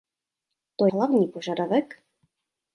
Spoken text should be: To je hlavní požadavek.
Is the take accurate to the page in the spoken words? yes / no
no